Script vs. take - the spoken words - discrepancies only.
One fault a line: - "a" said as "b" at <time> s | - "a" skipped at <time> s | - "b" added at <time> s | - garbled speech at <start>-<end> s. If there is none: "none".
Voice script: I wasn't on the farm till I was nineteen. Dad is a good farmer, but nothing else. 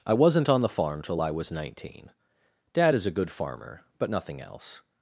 none